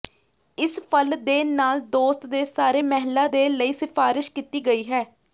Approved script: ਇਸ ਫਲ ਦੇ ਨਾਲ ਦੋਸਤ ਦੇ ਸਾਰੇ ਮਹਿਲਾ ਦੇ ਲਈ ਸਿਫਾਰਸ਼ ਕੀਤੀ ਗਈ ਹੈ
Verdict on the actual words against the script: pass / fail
pass